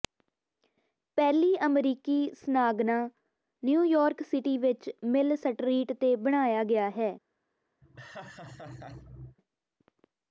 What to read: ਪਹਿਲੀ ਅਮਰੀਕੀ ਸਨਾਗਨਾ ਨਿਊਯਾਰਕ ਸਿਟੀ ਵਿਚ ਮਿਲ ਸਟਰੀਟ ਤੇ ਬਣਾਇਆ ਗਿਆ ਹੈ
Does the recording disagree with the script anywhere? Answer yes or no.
no